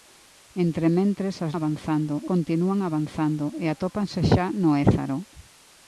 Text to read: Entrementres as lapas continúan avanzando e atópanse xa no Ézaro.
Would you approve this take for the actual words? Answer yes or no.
no